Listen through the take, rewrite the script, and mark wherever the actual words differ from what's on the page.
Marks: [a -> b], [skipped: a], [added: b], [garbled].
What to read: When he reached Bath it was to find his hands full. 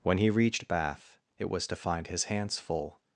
When he reached Bath it was to find his hands full.